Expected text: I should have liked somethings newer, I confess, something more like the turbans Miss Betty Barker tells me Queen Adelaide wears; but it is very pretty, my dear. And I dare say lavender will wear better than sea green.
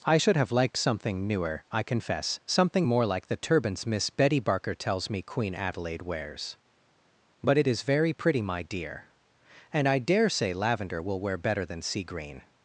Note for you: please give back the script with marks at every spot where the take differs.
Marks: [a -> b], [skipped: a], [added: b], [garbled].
I should have liked [somethings -> something] newer, I confess, something more like the turbans Miss Betty Barker tells me Queen Adelaide wears; but it is very pretty, my dear. And I dare say lavender will wear better than sea green.